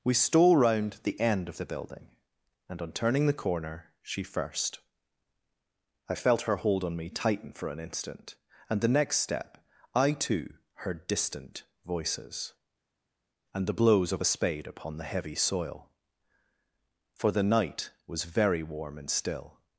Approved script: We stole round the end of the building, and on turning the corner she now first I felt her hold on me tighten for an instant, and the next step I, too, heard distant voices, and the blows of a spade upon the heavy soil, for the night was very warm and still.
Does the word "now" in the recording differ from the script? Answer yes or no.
yes